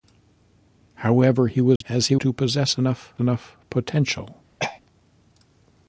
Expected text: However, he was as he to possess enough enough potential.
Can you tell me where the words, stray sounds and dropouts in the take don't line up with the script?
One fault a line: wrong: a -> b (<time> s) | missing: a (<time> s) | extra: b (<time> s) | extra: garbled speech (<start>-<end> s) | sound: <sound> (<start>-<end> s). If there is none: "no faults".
sound: dropout (1.8-1.8 s)
sound: throat clearing (4.6-4.8 s)